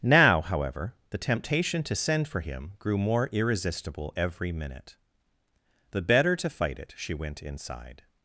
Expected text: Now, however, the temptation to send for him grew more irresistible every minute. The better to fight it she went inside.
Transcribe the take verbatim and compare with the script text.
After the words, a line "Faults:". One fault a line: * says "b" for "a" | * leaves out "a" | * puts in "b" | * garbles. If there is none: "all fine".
Now, however, the temptation to send for him grew more irresistible every minute. The better to fight it she went inside.
Faults:
all fine